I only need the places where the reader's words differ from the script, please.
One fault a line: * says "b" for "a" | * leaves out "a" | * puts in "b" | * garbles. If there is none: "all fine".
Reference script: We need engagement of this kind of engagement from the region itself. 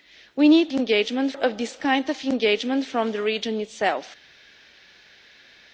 all fine